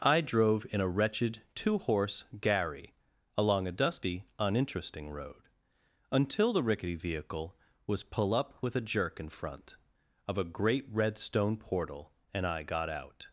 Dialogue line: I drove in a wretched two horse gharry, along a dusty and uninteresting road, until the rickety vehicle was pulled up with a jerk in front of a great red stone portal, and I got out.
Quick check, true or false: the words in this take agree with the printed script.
false